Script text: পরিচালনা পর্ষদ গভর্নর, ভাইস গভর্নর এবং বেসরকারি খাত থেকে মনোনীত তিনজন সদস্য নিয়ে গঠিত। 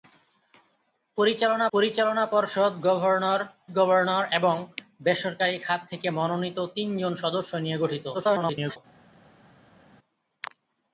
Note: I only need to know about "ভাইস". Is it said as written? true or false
false